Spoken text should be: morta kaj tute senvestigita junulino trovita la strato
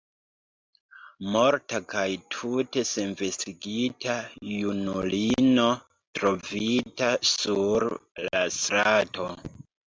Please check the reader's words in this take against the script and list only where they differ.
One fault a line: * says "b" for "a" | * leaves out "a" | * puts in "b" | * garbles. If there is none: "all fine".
* puts in "sur"